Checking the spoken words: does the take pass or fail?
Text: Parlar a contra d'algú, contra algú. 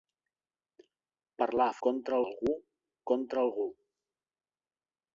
pass